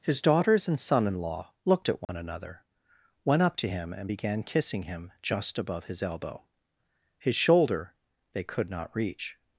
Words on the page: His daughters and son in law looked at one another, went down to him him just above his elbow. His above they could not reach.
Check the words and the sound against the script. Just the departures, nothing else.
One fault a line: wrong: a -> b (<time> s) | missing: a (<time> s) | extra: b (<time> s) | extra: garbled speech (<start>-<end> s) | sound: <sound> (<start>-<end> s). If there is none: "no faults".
sound: dropout (2.0-2.1 s)
wrong: down -> up (3.4 s)
extra: and began kissing (3.9 s)
wrong: above -> shoulder (7.4 s)